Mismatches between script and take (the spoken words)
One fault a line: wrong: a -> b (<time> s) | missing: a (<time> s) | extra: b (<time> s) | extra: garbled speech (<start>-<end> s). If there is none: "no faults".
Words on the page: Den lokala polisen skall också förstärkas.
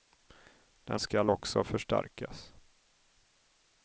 missing: lokala polisen (1.0 s)